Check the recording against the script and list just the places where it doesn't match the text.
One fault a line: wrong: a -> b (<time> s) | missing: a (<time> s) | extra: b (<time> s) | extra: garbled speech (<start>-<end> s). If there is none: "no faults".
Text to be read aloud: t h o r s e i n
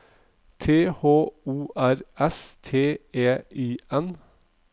extra: t (2.6 s)